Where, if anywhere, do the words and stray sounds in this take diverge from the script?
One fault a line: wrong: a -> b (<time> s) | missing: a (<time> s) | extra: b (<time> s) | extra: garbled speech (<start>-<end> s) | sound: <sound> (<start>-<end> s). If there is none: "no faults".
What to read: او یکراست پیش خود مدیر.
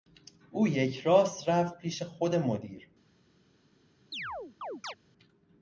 extra: رفت (1.5 s)
sound: chirp (4.1-4.9 s)